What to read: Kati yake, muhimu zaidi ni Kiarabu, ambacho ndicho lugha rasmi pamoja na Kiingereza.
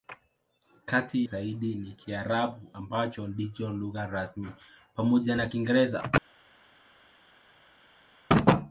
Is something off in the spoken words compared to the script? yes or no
yes